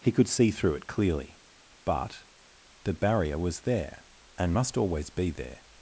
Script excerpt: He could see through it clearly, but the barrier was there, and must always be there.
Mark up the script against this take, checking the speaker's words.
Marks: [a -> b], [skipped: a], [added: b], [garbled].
He could see through it clearly, but the barrier was there, and must always be there.